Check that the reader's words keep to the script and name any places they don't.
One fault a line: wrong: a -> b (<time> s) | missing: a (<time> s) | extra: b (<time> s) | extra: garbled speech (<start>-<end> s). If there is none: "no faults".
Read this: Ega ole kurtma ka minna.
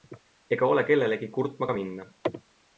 extra: kellelegi (0.9 s)